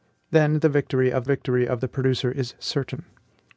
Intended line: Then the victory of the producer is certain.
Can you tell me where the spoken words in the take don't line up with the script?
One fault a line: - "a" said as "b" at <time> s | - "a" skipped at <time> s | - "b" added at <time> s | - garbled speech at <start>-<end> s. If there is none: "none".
- "victory of" added at 1.2 s